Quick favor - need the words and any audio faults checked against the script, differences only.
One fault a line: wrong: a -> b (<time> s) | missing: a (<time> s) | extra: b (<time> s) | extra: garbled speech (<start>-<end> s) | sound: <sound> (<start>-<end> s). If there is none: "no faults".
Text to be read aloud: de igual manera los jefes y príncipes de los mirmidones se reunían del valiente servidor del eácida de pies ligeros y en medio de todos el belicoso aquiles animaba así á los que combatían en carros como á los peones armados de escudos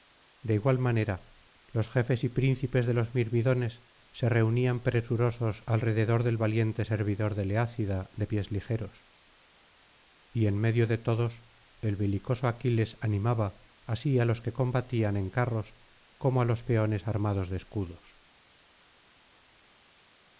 extra: presurosos alrededor (4.8 s)